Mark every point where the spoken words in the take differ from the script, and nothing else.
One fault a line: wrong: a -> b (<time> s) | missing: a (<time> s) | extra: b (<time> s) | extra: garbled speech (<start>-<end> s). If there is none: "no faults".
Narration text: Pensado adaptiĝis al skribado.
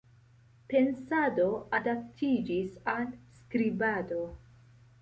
no faults